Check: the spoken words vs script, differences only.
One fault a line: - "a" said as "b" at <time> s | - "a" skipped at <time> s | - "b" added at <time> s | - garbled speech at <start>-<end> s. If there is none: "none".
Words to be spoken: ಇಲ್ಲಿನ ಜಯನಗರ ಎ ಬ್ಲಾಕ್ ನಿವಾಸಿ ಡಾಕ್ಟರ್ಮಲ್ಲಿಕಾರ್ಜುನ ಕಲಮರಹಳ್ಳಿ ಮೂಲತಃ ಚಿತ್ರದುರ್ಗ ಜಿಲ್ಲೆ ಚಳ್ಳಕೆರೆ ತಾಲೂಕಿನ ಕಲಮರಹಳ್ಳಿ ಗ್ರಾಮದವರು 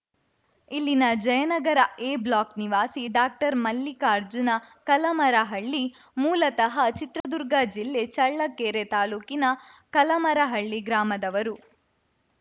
none